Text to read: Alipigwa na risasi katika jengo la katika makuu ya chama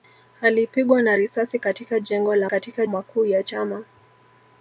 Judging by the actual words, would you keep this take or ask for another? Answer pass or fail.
pass